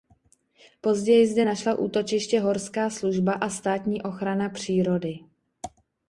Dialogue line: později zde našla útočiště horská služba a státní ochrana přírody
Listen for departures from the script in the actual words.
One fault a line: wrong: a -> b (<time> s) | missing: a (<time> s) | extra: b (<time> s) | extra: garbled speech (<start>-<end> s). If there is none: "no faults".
no faults